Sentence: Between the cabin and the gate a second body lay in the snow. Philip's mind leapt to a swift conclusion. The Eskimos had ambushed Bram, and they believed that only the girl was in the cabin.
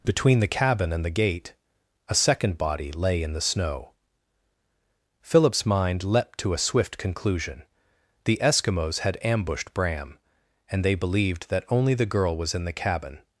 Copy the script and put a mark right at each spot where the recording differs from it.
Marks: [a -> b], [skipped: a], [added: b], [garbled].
Between the cabin and the gate a second body lay in the snow. Philip's mind leapt to a swift conclusion. The Eskimos had ambushed Bram, and they believed that only the girl was in the cabin.